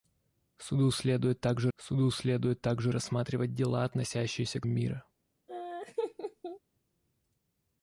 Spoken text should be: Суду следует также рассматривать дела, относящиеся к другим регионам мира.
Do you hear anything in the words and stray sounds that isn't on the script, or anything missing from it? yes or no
yes